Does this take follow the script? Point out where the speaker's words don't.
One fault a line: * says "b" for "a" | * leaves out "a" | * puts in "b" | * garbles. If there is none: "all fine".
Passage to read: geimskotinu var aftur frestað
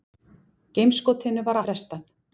* leaves out "aftur"